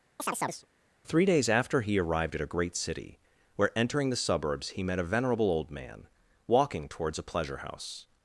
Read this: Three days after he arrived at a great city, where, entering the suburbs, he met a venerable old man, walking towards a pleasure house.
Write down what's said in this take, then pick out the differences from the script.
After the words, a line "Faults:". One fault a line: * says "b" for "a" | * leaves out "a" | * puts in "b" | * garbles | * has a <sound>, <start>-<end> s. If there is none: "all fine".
Three days after he arrived at a great city, where, entering the suburbs, he met a venerable old man, walking towards a pleasure house.
Faults:
* has a chirp, 0.2-0.7 s